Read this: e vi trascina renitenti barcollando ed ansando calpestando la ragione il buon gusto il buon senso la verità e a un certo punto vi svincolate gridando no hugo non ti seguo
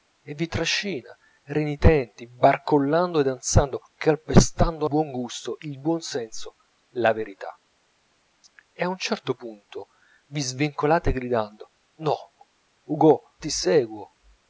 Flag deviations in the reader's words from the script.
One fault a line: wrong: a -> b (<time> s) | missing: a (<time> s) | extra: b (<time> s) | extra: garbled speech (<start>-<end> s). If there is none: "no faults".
missing: la ragione il (4.9 s)
missing: non (13.2 s)